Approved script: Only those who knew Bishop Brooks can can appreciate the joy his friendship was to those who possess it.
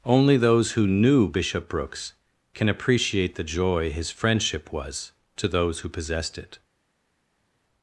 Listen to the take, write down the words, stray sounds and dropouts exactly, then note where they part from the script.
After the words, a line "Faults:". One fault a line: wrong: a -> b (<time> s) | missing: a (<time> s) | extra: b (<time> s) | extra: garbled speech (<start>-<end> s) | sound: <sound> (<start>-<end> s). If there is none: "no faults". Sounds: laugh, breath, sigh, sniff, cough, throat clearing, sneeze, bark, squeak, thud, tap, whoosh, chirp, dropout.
Only those who knew Bishop Brooks can appreciate the joy his friendship was to those who possessed it.
Faults:
missing: can (2.7 s)
wrong: possess -> possessed (5.9 s)